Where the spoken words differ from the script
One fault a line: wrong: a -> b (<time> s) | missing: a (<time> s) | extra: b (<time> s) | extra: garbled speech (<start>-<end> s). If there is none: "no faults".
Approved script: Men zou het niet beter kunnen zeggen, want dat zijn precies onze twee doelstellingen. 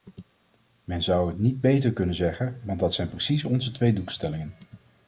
no faults